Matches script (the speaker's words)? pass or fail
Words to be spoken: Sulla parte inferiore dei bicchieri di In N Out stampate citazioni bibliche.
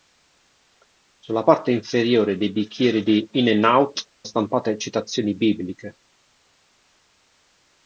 pass